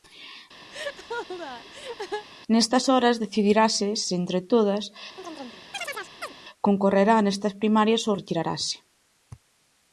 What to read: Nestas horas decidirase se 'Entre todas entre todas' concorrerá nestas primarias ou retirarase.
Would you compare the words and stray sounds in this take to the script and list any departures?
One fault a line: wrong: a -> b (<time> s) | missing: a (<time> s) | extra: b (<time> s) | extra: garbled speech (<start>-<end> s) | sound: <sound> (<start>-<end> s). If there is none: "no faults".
sound: laugh (0.7-2.3 s)
missing: entre todas (4.9 s)
sound: chirp (5.2-6.3 s)